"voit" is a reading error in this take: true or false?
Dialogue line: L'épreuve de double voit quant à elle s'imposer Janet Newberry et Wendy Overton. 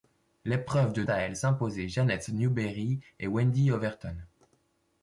true